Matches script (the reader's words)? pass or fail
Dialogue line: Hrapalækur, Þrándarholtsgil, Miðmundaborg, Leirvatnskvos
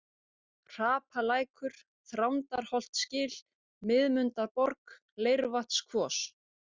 pass